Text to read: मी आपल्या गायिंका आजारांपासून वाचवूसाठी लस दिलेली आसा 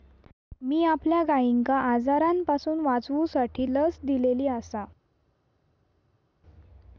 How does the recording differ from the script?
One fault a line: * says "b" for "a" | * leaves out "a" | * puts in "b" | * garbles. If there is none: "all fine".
all fine